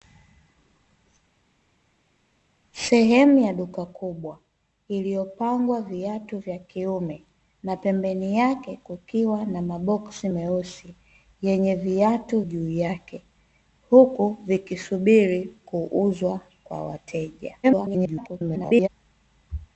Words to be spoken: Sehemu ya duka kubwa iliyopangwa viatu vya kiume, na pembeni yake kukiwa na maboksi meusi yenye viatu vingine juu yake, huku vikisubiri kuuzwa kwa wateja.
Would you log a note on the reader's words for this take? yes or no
yes